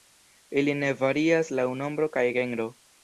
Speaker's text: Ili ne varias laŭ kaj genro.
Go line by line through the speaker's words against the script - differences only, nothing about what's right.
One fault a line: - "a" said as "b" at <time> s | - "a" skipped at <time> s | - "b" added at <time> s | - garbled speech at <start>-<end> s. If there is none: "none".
- "nombro" added at 1.8 s